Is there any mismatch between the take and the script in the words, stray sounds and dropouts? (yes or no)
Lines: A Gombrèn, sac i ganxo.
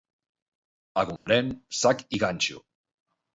yes